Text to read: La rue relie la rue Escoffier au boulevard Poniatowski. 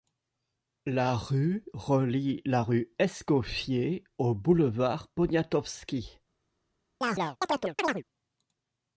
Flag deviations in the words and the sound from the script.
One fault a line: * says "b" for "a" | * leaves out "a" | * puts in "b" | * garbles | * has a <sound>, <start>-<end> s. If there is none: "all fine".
* has a chirp, 7.0-8.0 s